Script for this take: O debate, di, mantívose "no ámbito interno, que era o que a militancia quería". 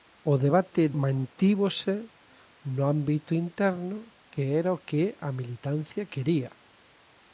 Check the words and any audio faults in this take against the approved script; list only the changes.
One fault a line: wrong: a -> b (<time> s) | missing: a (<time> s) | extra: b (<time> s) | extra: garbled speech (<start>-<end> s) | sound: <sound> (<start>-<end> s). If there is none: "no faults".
missing: di (0.8 s)